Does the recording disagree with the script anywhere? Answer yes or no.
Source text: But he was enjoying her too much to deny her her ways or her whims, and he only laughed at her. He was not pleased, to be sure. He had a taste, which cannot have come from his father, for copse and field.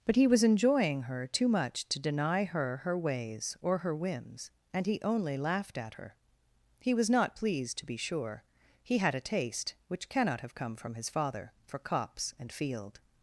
no